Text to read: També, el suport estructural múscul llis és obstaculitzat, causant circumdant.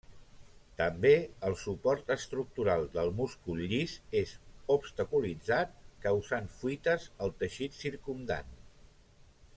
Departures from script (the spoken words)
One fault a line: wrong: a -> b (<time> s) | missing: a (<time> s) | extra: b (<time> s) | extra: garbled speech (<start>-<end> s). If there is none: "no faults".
extra: del (3.0 s)
extra: fuites al teixit (6.6 s)